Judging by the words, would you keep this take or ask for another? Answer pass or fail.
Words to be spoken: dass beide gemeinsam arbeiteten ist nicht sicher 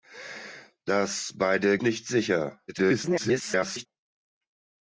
fail